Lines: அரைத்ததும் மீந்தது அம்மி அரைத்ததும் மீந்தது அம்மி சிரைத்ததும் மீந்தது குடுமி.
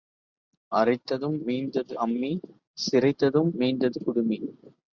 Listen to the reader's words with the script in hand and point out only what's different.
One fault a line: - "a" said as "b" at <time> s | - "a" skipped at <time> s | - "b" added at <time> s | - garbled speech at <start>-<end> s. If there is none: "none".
- "அரைத்ததும் மீந்தது அம்மி" skipped at 2.3 s